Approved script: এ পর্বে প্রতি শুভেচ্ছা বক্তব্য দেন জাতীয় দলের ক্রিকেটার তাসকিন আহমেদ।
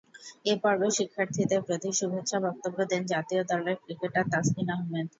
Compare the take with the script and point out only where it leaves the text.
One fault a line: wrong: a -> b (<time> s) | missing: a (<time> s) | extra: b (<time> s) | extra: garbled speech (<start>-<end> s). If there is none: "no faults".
extra: শিক্ষার্থীদের (1.0 s)